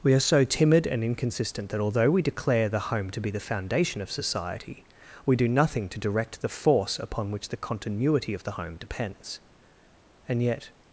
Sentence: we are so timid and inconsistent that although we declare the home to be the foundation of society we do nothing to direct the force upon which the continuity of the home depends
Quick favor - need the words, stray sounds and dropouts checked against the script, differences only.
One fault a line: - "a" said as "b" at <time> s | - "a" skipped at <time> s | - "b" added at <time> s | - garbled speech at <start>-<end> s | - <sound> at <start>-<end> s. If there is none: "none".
- "and yet" added at 10.3 s